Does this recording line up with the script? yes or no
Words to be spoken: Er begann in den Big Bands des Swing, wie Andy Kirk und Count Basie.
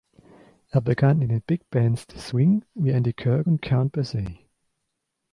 yes